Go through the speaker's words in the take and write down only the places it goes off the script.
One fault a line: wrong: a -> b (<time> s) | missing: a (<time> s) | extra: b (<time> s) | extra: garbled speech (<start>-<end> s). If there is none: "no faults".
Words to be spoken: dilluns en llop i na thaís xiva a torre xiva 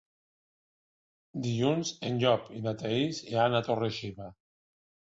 wrong: xiva -> iran (3.3 s)